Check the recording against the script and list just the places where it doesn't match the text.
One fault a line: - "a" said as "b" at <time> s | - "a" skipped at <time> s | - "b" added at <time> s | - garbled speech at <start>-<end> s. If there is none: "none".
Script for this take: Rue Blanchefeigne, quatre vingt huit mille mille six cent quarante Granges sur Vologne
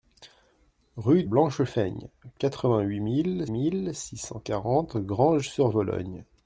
none